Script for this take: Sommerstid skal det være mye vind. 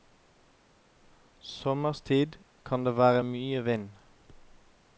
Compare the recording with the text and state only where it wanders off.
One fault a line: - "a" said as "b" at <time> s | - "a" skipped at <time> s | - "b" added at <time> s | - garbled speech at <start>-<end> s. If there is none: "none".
- "skal" said as "kan" at 2.6 s